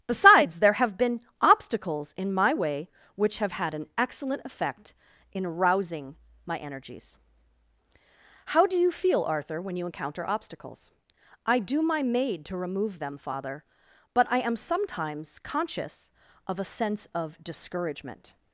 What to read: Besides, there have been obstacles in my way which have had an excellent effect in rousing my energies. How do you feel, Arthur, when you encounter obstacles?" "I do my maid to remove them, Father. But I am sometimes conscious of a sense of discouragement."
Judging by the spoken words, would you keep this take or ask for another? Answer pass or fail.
pass